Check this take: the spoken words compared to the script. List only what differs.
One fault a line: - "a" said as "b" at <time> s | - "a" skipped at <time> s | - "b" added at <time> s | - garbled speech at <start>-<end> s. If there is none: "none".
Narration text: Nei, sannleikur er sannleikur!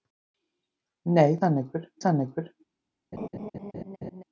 none